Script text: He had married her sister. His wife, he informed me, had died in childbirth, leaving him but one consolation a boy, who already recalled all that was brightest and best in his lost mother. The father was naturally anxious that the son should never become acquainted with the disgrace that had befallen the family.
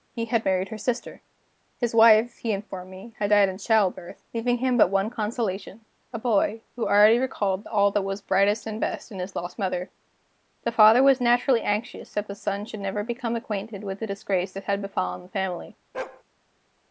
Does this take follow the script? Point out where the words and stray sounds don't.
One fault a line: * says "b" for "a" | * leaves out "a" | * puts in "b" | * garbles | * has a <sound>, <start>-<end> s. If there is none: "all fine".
* has a bark, 15.9-16.2 s